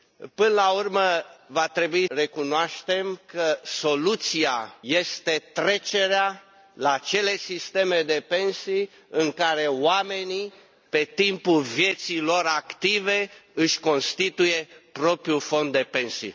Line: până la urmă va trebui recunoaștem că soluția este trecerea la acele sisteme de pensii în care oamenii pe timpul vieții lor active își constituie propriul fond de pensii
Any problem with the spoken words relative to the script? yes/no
no